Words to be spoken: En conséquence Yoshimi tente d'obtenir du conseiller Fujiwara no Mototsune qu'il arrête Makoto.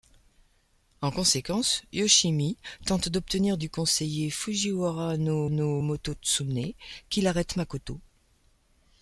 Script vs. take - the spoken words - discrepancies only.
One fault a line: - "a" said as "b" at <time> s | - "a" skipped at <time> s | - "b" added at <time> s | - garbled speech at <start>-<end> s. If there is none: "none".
- "no" added at 5.5 s